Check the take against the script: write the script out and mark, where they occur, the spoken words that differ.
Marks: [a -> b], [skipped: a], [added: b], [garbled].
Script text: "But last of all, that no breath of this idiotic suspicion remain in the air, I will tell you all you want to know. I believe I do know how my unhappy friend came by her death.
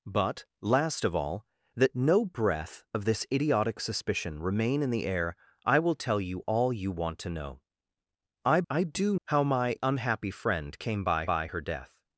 "But last of all, that no breath of this idiotic suspicion remain in the air, I will tell you all you want to know. I [skipped: believe] I do [skipped: know] how my unhappy friend came by [added: by] her death.